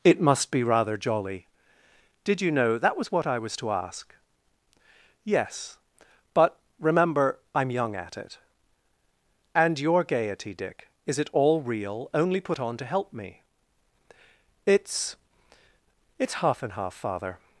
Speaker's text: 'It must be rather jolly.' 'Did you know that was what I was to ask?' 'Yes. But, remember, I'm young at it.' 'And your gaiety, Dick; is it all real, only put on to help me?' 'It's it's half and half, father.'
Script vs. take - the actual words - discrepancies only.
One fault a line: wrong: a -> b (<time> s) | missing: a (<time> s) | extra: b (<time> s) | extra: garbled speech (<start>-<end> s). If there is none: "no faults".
no faults